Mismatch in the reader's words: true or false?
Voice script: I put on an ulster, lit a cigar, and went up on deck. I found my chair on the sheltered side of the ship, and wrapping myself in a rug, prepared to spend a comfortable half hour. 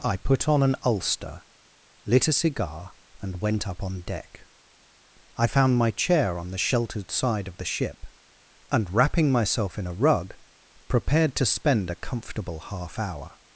false